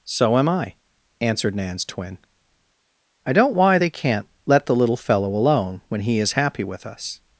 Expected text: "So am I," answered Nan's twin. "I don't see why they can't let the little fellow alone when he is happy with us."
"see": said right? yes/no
no